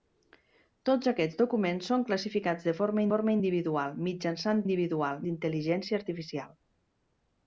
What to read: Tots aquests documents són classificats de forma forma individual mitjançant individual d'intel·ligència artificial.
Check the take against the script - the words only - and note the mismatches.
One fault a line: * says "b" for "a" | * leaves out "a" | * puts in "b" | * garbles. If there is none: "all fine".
all fine